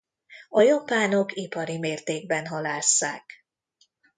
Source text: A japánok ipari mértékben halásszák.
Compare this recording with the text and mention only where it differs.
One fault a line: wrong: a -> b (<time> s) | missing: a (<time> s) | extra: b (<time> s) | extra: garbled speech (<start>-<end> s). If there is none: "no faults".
no faults